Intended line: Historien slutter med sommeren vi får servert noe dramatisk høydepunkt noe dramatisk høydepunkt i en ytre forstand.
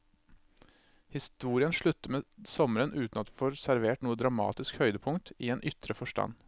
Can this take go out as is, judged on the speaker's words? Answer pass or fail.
fail